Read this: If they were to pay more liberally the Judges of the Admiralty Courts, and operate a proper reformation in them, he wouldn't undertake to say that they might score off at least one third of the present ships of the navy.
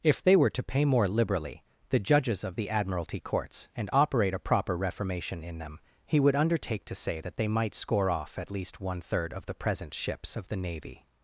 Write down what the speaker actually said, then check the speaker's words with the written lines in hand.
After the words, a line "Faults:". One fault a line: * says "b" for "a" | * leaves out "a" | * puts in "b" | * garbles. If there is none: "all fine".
If they were to pay more liberally the Judges of the Admiralty Courts, and operate a proper reformation in them, he would undertake to say that they might score off at least one third of the present ships of the navy.
Faults:
* says "would" for "wouldn't"